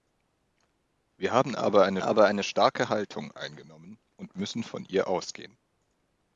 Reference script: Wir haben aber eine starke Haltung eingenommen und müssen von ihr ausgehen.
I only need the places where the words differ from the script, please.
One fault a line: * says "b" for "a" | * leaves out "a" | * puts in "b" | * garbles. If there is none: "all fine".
* puts in "aber eine"